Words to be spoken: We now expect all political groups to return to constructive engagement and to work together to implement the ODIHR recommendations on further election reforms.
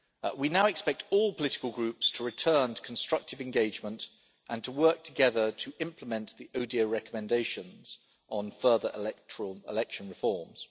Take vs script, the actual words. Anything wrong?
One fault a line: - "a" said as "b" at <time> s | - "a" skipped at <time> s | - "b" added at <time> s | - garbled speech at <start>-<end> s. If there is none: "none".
none